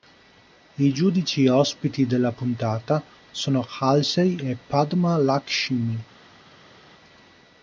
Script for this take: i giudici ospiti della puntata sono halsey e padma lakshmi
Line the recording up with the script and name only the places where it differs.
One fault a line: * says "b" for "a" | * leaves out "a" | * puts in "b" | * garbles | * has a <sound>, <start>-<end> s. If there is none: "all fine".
all fine